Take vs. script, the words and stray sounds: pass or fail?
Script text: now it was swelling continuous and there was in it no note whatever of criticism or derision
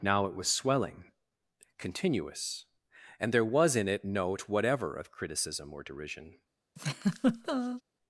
fail